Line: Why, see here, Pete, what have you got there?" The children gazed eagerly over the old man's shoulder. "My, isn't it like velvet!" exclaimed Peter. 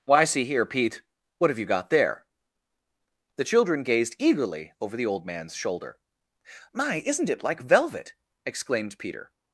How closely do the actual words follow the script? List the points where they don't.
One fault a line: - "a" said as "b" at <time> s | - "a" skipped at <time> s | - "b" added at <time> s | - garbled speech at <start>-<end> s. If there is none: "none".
none